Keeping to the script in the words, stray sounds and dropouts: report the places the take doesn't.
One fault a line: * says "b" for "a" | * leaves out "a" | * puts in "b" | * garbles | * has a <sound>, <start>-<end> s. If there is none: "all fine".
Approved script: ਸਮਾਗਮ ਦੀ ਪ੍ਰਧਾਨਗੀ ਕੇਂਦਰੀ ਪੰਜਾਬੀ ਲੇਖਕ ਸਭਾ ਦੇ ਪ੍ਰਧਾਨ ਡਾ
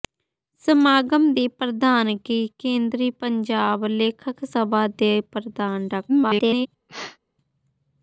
* garbles
* has a sneeze, 6.9-7.2 s